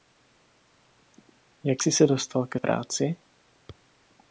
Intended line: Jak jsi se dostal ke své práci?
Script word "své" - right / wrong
wrong